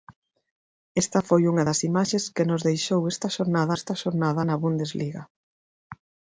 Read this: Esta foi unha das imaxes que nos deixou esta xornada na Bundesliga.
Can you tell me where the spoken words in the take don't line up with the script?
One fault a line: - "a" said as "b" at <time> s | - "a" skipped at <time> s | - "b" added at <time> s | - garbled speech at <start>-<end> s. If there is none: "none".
- "esta xornada" added at 3.8 s